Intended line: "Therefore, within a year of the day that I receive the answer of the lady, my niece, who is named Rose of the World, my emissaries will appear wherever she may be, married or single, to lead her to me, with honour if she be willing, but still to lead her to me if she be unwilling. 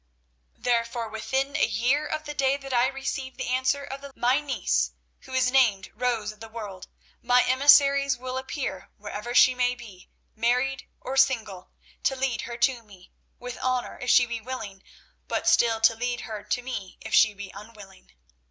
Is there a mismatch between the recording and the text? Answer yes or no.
yes